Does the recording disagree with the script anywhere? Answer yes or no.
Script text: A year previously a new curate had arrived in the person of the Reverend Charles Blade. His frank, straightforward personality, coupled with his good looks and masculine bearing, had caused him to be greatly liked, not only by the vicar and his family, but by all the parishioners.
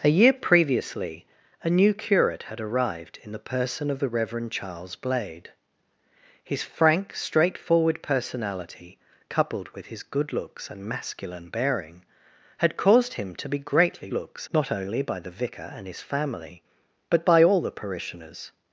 yes